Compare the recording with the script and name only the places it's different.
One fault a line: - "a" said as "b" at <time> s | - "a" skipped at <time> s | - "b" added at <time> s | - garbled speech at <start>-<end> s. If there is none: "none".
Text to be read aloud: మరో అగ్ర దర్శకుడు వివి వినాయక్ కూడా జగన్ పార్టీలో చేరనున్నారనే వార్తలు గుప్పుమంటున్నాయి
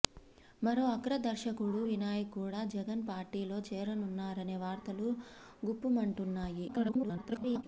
- "వివి" skipped at 1.8 s
- garbled speech at 6.7-7.6 s